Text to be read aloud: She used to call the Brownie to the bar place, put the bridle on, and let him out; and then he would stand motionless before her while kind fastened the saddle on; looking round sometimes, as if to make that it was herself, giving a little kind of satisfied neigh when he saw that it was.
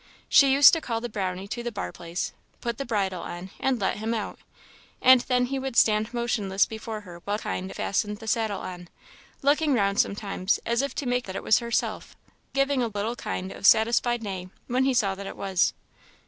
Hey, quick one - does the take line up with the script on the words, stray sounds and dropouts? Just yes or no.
no